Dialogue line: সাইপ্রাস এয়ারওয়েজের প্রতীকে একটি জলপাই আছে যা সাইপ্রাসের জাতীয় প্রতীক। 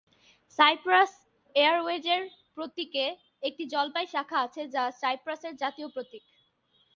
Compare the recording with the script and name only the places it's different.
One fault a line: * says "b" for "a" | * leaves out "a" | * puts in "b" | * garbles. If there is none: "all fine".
* puts in "শাখা"